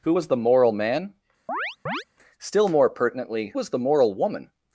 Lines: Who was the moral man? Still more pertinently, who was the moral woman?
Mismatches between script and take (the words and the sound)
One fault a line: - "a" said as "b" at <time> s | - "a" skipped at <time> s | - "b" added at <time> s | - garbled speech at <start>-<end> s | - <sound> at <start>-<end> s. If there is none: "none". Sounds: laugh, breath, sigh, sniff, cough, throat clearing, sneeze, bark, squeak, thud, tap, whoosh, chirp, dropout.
- chirp at 1.5-2.0 s
- "who" skipped at 3.5 s